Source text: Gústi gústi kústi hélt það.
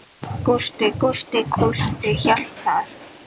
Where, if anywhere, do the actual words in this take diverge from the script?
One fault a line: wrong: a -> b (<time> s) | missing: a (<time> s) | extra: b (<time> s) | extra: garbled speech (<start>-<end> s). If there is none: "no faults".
no faults